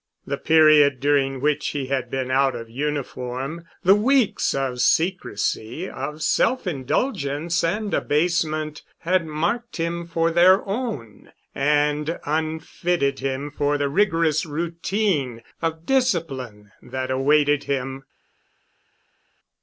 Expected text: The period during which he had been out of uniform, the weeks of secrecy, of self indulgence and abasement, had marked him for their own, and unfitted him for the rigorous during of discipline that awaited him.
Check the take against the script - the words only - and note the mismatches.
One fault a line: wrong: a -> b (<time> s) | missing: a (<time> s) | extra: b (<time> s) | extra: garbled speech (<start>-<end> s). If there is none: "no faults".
wrong: during -> routine (14.4 s)